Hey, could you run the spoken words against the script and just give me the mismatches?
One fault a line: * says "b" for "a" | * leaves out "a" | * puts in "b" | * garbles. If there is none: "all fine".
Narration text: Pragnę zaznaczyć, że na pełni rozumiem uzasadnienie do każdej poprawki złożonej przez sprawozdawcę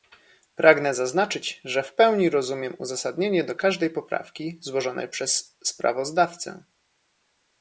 * says "w" for "na"